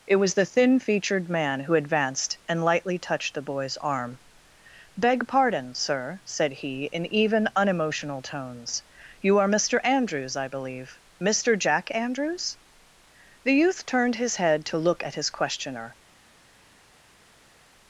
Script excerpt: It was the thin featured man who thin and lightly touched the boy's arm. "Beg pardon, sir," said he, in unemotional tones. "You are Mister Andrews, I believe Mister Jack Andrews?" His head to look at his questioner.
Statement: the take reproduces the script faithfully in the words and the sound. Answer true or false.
false